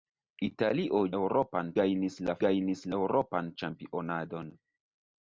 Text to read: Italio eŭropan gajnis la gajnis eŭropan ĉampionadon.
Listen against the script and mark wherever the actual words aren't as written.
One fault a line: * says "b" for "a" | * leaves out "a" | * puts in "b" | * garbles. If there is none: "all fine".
all fine